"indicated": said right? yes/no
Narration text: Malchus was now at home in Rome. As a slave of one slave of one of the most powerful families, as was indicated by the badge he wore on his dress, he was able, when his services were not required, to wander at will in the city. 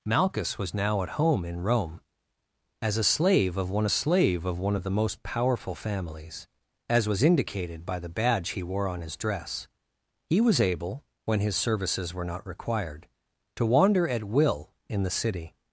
yes